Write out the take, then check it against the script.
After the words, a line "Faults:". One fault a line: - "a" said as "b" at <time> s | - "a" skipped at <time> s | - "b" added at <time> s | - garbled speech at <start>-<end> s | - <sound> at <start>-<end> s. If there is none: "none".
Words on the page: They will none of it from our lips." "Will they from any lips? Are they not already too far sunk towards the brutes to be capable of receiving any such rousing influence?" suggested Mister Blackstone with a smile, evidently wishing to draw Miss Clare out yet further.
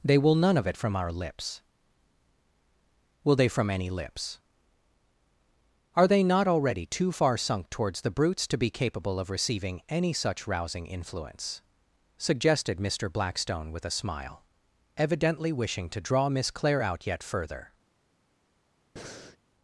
They will none of it from our lips." "Will they from any lips? Are they not already too far sunk towards the brutes to be capable of receiving any such rousing influence?" suggested Mister Blackstone with a smile, evidently wishing to draw Miss Clare out yet further.
Faults:
- breath at 19.0-19.4 s